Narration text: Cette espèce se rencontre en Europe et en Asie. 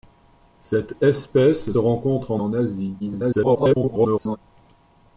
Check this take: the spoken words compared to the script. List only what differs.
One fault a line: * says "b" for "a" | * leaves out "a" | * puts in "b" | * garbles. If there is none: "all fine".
* leaves out "se"
* leaves out "Europe et"
* garbles